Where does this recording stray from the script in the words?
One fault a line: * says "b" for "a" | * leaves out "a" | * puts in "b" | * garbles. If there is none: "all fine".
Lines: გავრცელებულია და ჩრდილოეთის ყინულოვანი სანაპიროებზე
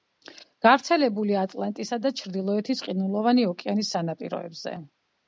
* puts in "ატლანტისა"
* puts in "ოკეანის"